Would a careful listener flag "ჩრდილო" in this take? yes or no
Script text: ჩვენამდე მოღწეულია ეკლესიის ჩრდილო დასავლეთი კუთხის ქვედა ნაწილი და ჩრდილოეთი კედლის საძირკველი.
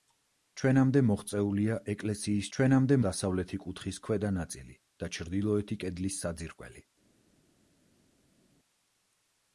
yes